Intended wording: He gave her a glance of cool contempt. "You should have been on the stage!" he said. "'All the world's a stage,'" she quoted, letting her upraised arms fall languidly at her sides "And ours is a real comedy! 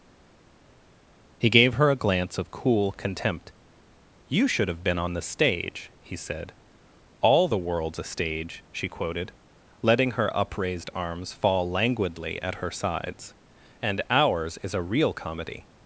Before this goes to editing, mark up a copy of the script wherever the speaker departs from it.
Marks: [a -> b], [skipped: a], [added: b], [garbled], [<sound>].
He gave her a glance of cool contempt. "You should have been on the stage!" he said. "'All the world's a stage,'" she quoted, letting her upraised arms fall languidly at her sides "And ours is a real comedy!